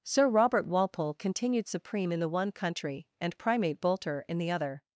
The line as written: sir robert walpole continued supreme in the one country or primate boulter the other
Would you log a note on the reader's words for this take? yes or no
yes